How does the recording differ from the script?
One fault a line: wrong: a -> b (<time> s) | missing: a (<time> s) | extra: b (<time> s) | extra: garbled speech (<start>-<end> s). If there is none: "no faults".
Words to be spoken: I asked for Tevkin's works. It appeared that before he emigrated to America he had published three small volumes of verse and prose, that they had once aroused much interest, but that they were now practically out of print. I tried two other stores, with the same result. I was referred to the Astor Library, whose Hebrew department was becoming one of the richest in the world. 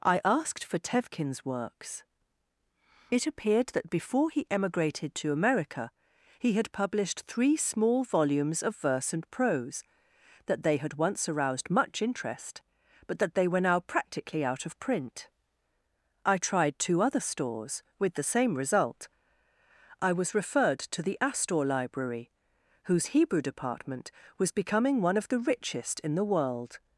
no faults